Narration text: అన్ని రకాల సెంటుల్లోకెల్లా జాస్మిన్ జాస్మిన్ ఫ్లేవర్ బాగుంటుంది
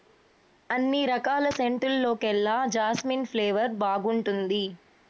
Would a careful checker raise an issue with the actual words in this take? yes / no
yes